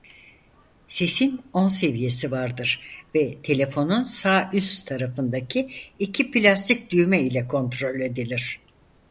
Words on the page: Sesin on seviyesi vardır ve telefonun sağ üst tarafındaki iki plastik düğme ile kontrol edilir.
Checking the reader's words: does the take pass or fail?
pass